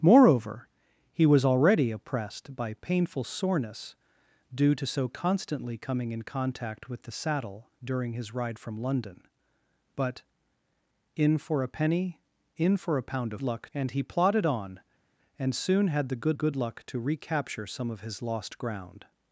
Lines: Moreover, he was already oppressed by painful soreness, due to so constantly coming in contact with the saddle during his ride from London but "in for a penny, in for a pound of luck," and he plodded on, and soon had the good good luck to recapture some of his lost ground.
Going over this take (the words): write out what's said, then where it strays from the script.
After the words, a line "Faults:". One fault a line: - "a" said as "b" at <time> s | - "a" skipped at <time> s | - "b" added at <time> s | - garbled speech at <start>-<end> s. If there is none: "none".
Moreover, he was already oppressed by painful soreness, due to so constantly coming in contact with the saddle during his ride from London but "in for a penny, in for a pound of luck," and he plodded on, and soon had the good good luck to recapture some of his lost ground.
Faults:
none